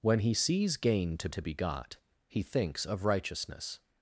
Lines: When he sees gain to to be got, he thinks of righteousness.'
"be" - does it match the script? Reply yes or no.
yes